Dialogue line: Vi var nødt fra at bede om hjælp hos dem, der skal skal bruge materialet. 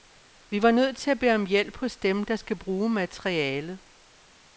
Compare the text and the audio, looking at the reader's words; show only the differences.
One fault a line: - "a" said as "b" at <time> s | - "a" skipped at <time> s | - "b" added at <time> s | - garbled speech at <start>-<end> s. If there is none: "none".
- "fra" said as "til" at 1.0 s
- "skal" skipped at 2.6 s